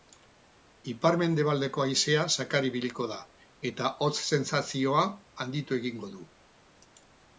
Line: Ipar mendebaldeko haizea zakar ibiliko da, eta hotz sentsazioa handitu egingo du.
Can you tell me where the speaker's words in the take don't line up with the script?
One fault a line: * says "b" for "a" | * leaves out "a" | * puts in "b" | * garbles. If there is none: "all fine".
all fine